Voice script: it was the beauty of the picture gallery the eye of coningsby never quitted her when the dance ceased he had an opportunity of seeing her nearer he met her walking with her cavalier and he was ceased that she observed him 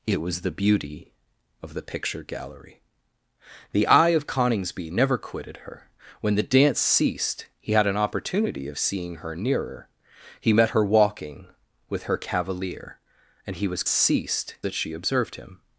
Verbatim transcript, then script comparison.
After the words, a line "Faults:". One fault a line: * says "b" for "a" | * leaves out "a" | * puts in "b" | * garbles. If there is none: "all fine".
it was the beauty of the picture gallery the eye of coningsby never quitted her when the dance ceased he had an opportunity of seeing her nearer he met her walking with her cavalier and he was ceased that she observed him
Faults:
all fine